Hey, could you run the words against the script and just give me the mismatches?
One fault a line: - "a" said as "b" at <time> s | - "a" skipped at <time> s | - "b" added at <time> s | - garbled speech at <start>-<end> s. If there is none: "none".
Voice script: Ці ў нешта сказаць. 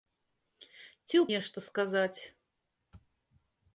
none